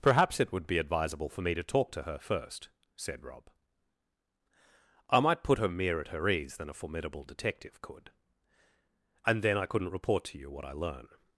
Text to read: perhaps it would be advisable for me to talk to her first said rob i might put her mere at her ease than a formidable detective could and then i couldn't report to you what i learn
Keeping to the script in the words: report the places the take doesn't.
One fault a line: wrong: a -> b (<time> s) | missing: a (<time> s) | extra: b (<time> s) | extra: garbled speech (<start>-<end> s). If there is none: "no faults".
no faults